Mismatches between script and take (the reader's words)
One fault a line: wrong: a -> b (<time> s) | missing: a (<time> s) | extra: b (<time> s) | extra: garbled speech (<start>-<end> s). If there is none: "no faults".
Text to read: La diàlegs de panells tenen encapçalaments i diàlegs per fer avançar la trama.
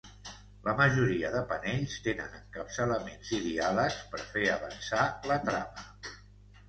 wrong: diàlegs -> majoria (0.8 s)